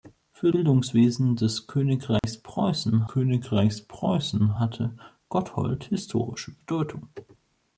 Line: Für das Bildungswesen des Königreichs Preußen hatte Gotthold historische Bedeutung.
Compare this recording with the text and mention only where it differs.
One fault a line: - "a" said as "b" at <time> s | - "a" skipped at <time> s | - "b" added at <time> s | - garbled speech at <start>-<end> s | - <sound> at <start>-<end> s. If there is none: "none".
- "das" skipped at 0.5 s
- dropout at 2.2-2.2 s
- "Königreichs Preußen" added at 3.1 s